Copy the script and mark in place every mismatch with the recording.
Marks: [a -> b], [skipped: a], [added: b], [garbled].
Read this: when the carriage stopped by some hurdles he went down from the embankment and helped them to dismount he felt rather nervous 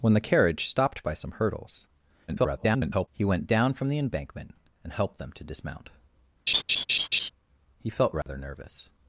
when the carriage stopped by some hurdles [garbled] he went down from the embankment and helped them to dismount he felt rather nervous